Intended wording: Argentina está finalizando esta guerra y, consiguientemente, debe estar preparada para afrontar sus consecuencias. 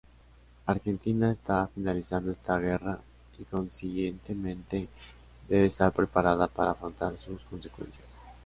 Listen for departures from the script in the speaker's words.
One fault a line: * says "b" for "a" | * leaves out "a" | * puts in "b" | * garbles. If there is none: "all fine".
all fine